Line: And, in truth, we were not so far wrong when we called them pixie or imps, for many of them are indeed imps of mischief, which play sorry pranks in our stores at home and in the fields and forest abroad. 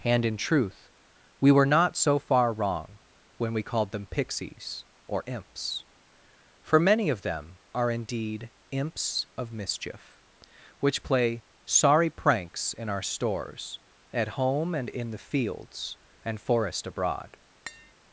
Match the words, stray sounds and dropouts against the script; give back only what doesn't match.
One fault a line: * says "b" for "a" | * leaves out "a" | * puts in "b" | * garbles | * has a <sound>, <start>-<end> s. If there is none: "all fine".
* says "pixies" for "pixie"
* has a tap, 17.7-17.9 s